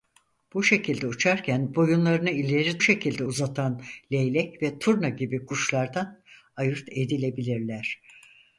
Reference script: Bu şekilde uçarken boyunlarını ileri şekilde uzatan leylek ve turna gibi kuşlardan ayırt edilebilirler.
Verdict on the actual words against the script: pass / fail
pass